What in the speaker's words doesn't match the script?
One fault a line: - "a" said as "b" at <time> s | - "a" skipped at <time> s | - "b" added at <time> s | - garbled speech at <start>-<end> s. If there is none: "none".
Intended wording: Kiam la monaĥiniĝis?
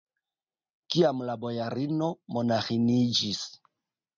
- "bojarino" added at 1.4 s